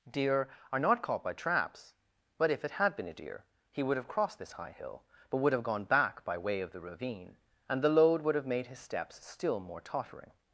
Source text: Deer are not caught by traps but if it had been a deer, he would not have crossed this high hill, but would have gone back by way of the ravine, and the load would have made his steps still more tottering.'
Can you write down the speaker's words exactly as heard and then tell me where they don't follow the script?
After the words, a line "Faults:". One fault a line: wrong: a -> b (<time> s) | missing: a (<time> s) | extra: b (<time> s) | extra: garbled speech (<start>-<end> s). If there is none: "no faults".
Deer are not caught by traps but if it had been a deer, he would have crossed this high hill, but would have gone back by way of the ravine, and the load would have made his steps still more tottering.'
Faults:
missing: not (4.0 s)